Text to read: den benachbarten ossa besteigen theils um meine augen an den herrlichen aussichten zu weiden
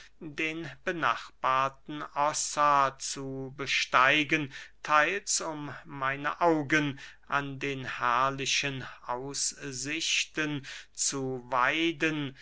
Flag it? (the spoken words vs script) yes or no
yes